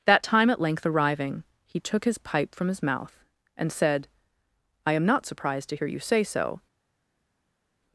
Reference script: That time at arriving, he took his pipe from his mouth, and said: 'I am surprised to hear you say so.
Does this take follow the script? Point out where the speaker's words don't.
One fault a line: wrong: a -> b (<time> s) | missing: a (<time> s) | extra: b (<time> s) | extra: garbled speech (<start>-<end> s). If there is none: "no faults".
extra: length (0.6 s)
extra: not (5.1 s)